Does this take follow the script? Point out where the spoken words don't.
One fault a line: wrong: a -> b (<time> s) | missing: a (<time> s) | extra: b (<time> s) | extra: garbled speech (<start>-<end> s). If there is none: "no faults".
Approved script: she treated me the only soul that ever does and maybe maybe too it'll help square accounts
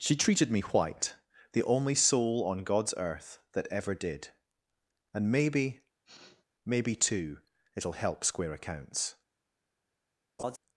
extra: white (0.6 s)
extra: on god's earth (2.5 s)
wrong: does -> did (3.9 s)